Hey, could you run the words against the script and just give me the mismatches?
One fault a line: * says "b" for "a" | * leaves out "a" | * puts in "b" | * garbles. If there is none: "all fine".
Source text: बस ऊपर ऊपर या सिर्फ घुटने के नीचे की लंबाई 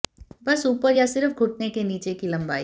* leaves out "ऊपर"